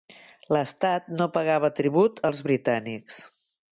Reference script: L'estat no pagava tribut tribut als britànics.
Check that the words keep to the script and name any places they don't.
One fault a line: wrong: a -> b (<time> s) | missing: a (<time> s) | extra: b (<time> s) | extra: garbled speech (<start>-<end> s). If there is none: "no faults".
missing: tribut (2.2 s)